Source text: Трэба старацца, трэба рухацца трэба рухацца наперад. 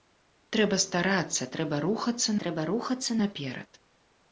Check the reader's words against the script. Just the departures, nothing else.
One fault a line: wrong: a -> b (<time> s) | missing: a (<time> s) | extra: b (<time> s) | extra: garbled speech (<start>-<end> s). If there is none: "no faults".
no faults